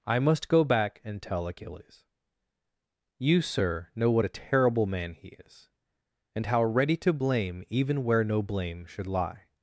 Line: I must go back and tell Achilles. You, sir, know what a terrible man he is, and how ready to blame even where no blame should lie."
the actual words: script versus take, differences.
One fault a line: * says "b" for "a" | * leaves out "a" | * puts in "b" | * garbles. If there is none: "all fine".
all fine